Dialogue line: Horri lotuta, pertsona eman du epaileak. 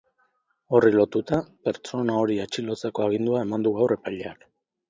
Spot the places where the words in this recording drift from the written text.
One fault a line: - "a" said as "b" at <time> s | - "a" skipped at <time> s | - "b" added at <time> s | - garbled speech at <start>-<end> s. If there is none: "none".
- "hori atxilotzeko agindua" added at 2.2 s
- "gaur" added at 3.8 s